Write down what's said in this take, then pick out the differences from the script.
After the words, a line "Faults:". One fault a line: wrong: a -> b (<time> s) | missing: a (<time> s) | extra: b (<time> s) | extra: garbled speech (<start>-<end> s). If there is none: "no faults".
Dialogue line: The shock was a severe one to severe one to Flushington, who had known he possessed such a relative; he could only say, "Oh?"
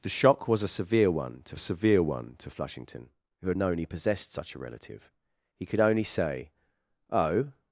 The shock was a severe one to severe one to Flushington, who had known he possessed such a relative; he could only say, "Oh?"
Faults:
no faults